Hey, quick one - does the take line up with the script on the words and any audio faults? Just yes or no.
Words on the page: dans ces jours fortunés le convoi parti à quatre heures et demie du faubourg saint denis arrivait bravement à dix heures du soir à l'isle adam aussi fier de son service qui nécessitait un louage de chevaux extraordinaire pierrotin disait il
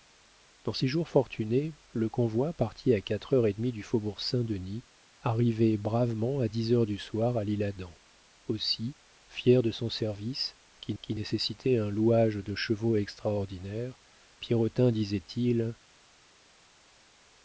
no